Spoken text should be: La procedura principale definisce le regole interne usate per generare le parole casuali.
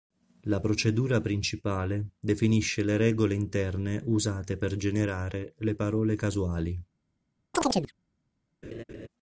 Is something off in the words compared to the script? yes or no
no